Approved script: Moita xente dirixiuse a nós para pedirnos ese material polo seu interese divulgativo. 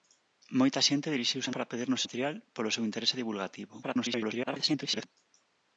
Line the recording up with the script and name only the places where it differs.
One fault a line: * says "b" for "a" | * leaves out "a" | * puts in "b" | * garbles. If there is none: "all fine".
* leaves out "nós"
* leaves out "ese"
* garbles